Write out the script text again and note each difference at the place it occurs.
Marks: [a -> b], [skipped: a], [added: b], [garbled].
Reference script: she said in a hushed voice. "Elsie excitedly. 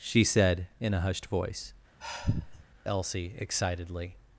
she said in a hushed voice. "Elsie excitedly.